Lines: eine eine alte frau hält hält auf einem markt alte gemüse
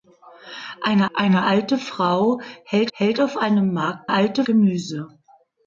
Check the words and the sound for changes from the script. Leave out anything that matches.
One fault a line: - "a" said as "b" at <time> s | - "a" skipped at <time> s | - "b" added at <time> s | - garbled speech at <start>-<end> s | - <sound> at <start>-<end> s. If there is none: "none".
none